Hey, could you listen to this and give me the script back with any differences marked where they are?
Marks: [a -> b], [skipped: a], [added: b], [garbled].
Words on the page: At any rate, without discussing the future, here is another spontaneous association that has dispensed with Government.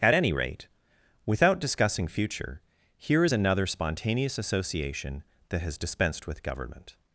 At any rate, without discussing [skipped: the] future, here is another spontaneous association that has dispensed with Government.